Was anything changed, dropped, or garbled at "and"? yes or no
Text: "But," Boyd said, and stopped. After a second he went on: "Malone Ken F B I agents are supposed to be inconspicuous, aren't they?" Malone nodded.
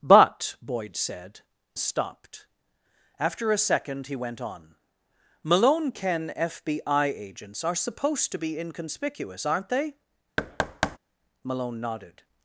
yes